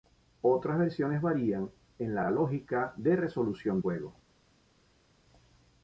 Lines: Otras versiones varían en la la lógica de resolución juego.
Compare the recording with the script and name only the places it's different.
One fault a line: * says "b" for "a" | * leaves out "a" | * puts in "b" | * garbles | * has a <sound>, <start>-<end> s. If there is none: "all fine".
all fine